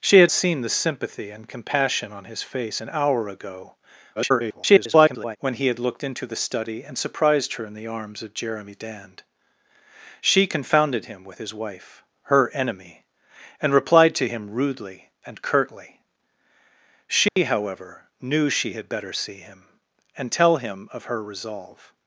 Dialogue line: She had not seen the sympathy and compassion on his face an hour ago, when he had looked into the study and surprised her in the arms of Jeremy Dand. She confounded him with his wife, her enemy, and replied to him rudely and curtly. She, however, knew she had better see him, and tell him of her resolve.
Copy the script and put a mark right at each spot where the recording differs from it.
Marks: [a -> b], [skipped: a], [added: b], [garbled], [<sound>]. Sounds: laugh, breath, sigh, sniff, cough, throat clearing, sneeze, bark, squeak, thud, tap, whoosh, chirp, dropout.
She had [skipped: not] seen the sympathy and compassion on his face an hour ago, [garbled] when he had looked into the study and surprised her in the arms of Jeremy Dand. She confounded him with his wife, her enemy, and replied to him rudely and curtly. She, [dropout] however, knew she had better see him, and tell him of her resolve.